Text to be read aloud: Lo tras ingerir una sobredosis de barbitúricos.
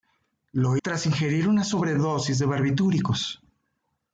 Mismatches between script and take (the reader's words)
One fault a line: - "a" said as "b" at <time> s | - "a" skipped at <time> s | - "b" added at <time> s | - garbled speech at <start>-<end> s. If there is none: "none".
none